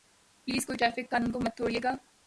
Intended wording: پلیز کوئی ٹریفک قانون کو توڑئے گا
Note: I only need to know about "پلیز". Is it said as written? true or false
true